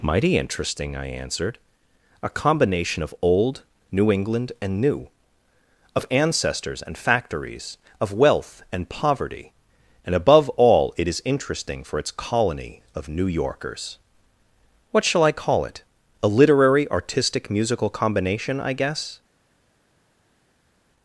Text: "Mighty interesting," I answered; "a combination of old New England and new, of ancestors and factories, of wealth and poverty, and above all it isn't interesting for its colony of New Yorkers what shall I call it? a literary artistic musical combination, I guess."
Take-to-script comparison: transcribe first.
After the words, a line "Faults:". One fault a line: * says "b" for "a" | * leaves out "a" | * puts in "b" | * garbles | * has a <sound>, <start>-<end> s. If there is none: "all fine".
"Mighty interesting," I answered; "a combination of old New England and new, of ancestors and factories, of wealth and poverty, and above all it is interesting for its colony of New Yorkers what shall I call it? a literary artistic musical combination, I guess."
Faults:
* says "is" for "isn't"